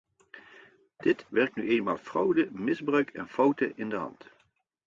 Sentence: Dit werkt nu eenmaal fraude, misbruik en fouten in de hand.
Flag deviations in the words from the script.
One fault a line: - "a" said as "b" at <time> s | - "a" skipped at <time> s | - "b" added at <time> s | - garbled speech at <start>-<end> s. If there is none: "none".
none